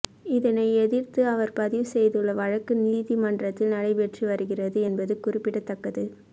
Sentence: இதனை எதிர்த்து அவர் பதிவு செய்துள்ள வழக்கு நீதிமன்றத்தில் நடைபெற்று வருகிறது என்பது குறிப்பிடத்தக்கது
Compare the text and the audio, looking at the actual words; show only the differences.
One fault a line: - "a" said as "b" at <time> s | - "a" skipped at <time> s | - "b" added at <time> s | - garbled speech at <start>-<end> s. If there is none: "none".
none